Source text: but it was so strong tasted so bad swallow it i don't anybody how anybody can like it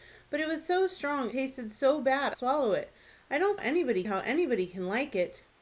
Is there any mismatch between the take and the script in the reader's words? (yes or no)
no